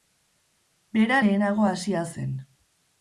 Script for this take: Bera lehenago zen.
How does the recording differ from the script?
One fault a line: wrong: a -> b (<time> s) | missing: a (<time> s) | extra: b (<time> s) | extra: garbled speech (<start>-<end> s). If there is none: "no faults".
extra: hasia (1.7 s)